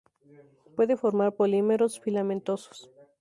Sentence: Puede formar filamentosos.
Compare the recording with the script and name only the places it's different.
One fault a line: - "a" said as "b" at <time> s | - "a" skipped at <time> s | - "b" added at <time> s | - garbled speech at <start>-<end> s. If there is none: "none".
- "polímeros" added at 1.3 s